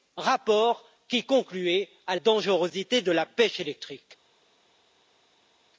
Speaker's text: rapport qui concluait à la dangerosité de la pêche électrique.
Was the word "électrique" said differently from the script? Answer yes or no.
no